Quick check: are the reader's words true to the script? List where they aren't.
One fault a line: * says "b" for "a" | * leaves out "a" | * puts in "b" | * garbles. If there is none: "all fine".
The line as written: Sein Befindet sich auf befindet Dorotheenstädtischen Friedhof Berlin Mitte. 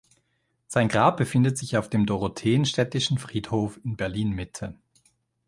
* puts in "Grab"
* says "dem" for "befindet"
* puts in "in"